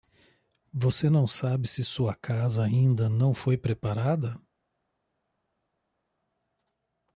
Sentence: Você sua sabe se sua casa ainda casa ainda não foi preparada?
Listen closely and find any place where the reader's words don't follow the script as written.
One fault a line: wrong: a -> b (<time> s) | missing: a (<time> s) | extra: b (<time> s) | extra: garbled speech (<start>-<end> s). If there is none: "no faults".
wrong: sua -> não (1.1 s)
missing: casa ainda (3.1 s)